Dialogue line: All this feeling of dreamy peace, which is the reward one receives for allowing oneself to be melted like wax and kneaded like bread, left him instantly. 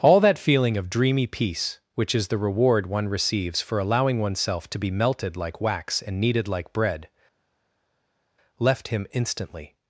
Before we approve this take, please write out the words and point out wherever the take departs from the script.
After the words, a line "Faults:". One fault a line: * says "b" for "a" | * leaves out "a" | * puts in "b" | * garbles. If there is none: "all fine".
All that feeling of dreamy peace, which is the reward one receives for allowing oneself to be melted like wax and kneaded like bread, left him instantly.
Faults:
* says "that" for "this"